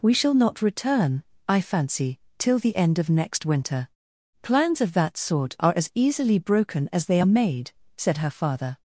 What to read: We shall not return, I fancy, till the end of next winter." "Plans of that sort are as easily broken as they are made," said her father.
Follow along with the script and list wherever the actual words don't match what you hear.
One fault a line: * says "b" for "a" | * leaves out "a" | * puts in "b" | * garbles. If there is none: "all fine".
all fine